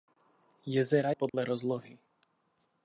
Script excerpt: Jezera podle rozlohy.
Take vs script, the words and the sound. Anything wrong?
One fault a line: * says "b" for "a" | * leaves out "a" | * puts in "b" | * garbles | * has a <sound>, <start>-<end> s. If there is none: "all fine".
* has a dropout, 1.3-1.3 s